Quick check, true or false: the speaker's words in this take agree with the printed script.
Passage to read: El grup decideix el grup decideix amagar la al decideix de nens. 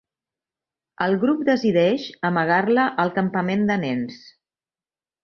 false